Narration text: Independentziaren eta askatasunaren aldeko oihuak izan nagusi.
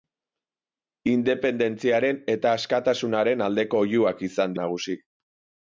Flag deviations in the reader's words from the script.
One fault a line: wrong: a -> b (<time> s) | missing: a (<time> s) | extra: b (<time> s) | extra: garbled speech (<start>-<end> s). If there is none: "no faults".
no faults